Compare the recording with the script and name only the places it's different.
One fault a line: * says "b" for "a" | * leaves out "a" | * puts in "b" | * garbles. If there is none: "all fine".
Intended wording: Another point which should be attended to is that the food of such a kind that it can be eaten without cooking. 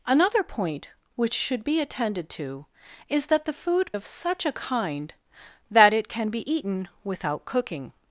all fine